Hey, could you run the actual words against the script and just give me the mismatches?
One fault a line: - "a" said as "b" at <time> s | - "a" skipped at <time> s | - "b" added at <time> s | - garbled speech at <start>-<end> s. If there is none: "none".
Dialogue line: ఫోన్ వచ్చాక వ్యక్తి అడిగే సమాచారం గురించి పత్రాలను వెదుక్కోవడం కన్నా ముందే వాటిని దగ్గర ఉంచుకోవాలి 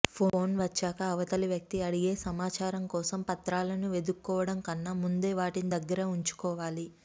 - "అవతలి" added at 1.1 s
- "గురించి" said as "కోసం" at 2.9 s